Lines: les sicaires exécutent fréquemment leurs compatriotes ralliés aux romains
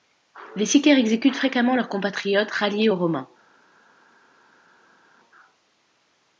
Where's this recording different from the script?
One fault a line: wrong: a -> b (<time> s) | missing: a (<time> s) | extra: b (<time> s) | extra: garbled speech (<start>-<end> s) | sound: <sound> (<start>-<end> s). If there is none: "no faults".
no faults